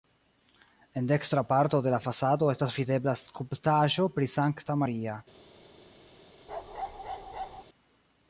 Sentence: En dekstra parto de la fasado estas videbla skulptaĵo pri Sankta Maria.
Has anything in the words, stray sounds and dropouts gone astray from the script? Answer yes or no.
yes